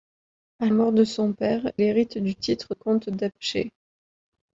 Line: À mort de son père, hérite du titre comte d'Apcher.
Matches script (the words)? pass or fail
pass